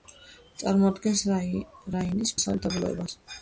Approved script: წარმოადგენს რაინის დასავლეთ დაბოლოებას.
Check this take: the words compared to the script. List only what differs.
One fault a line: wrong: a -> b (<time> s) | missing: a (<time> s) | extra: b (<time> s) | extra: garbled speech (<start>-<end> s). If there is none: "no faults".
no faults